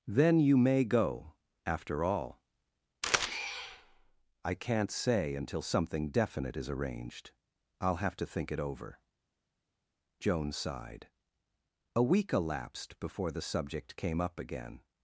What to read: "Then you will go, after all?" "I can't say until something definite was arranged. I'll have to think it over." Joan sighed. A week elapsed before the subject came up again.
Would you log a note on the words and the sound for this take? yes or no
yes